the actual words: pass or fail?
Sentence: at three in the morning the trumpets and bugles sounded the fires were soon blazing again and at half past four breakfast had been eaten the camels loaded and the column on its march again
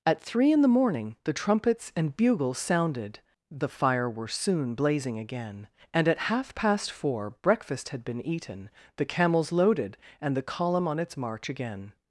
fail